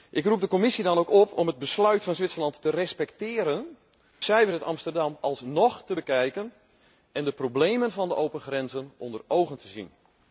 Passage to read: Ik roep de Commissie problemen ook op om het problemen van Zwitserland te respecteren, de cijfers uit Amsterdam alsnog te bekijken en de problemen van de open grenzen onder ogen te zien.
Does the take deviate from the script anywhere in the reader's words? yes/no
yes